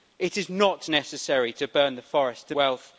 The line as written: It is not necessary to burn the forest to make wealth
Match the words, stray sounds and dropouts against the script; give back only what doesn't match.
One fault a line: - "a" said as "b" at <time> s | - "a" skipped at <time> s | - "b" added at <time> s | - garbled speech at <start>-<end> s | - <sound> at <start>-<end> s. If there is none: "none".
- "make" skipped at 2.6 s